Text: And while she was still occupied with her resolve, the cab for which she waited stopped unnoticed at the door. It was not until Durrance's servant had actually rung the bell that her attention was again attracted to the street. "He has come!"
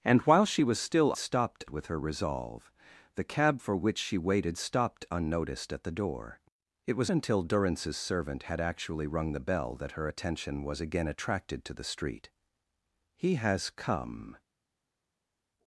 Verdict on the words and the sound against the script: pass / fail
fail